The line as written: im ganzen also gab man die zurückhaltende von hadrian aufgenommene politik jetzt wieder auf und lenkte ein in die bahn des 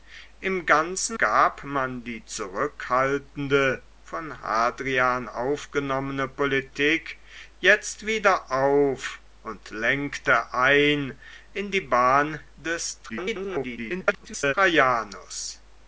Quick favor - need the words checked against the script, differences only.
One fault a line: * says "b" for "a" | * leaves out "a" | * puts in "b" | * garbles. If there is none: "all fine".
* leaves out "also"
* garbles